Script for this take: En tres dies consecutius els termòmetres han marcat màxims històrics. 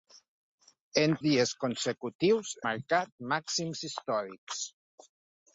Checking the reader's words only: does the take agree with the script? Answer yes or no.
no